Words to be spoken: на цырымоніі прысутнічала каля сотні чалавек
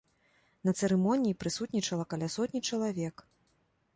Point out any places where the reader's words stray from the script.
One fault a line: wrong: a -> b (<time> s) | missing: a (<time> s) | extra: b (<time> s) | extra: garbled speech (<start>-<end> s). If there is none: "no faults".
no faults